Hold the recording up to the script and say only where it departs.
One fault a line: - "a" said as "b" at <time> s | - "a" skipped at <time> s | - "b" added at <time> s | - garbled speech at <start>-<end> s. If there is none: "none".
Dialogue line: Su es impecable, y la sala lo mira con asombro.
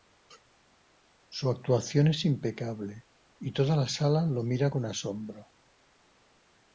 - "actuación" added at 1.5 s
- "toda" added at 3.5 s